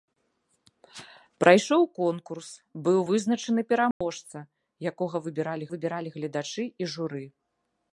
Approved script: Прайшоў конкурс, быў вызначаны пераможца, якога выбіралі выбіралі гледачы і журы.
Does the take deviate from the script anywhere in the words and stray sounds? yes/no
yes